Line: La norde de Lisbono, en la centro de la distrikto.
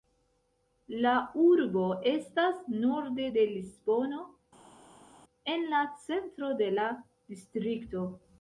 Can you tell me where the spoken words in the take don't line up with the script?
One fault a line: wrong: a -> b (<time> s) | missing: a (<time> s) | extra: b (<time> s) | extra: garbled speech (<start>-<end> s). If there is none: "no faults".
extra: urbo estas (1.4 s)